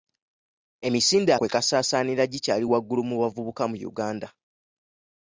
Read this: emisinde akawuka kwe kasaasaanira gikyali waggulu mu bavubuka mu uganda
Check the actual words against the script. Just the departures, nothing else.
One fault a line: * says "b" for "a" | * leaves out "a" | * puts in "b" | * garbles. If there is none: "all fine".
* leaves out "akawuka"